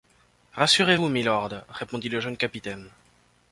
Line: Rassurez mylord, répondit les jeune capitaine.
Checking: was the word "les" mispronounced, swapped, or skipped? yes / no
yes